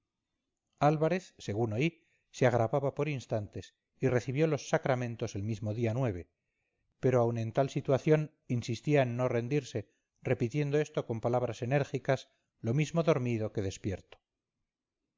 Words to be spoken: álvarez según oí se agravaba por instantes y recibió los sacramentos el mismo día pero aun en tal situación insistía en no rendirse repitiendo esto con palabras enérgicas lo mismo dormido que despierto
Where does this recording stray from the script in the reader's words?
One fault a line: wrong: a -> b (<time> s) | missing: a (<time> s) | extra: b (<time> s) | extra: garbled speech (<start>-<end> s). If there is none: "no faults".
no faults